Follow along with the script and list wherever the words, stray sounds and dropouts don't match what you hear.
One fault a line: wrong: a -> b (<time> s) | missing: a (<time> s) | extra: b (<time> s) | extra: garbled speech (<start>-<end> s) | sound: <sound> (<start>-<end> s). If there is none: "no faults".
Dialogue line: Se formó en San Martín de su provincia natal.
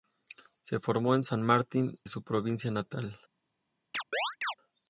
missing: de (1.9 s)
sound: chirp (3.9-4.5 s)